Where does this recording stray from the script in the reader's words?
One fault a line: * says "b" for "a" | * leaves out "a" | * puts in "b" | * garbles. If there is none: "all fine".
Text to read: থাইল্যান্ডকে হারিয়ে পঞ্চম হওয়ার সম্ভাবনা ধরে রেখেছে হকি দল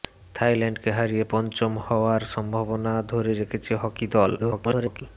* garbles